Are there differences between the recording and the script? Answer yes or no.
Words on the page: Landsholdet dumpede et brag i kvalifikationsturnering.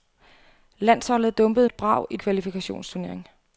no